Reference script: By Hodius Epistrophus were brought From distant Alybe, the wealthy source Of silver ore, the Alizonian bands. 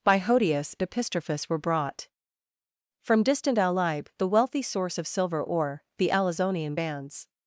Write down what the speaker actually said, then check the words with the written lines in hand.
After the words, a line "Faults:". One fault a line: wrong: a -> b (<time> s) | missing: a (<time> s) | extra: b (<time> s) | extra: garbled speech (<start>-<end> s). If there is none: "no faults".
By Hodius Epistrophus were brought From distant Alybe, the wealthy source Of silver ore, the Alizonian bands.
Faults:
no faults